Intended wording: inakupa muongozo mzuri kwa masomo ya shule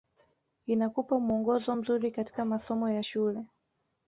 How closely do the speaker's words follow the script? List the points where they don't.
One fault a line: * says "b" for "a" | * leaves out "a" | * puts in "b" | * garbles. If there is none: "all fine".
* says "katika" for "kwa"